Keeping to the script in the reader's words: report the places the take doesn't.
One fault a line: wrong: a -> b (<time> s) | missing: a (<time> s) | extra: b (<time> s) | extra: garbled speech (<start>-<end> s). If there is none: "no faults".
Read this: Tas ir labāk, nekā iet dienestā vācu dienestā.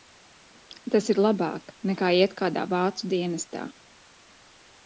wrong: dienestā -> kādā (2.4 s)